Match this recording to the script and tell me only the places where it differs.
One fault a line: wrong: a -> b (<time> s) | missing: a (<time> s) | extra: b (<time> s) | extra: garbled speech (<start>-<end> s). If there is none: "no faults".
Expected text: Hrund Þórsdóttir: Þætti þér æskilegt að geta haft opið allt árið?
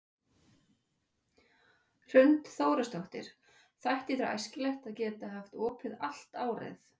no faults